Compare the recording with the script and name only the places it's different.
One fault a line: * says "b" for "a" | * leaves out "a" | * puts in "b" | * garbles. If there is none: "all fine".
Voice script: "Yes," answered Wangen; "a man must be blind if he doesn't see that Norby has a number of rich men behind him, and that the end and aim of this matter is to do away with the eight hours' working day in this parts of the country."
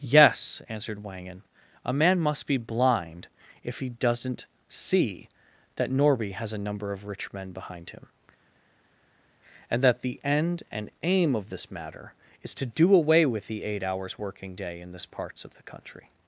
all fine